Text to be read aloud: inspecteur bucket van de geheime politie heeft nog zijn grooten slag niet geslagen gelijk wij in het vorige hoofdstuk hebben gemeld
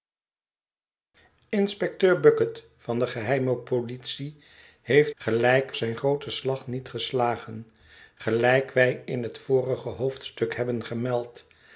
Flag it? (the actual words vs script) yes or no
yes